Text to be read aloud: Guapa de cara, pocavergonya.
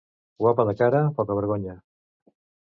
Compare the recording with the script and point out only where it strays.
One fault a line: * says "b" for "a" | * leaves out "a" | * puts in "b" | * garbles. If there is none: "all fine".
all fine